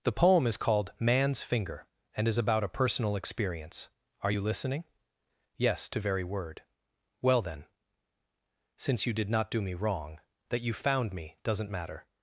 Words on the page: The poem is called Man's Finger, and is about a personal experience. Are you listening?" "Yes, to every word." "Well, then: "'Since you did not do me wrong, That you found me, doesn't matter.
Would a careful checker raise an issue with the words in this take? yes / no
yes